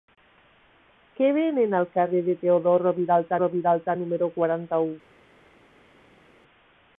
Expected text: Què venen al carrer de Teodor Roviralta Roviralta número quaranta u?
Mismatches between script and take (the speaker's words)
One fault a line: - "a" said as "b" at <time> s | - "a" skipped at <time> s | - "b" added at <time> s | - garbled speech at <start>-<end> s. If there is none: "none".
none